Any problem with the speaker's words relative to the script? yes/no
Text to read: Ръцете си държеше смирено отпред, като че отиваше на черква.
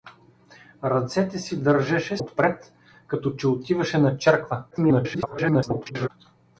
yes